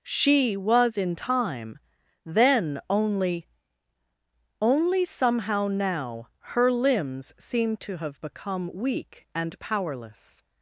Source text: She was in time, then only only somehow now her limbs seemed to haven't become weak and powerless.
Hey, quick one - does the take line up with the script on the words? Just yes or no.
no